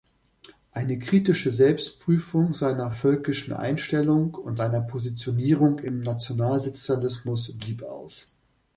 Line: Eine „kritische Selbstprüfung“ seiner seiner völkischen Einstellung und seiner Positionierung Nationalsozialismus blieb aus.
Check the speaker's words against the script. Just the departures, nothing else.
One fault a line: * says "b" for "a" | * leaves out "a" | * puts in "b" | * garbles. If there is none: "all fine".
* leaves out "seiner"
* puts in "im"